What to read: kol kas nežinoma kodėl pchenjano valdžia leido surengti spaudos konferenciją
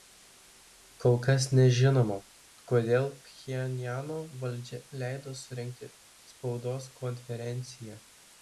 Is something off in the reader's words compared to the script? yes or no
no